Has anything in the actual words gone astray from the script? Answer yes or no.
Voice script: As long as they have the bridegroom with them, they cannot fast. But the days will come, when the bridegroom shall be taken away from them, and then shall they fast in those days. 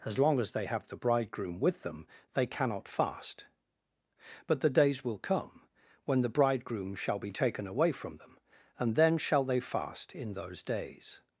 no